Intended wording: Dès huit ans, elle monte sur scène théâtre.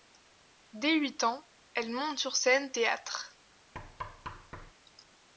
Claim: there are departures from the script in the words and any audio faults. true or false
true